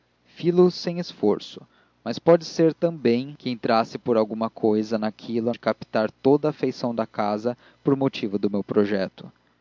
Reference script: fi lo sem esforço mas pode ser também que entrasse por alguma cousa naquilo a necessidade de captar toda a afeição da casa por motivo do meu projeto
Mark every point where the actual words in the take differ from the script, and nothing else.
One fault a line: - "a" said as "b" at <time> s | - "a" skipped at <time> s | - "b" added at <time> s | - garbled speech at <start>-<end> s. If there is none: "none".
- "necessidade" skipped at 5.5 s